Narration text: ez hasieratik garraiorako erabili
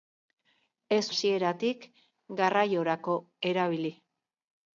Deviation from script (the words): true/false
false